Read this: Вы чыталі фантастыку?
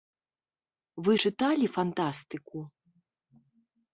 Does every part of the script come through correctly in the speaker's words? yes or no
yes